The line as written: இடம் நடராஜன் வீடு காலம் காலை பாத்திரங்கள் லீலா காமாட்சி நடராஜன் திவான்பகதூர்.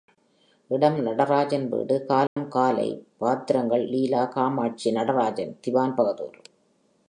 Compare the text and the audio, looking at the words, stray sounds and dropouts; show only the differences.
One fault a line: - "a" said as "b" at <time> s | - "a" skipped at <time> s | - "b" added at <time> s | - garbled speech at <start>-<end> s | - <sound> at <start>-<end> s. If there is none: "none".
- dropout at 2.3-2.4 s